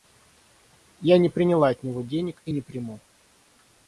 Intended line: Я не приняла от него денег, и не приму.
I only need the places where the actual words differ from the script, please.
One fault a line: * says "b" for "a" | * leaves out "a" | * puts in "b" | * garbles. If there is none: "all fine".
all fine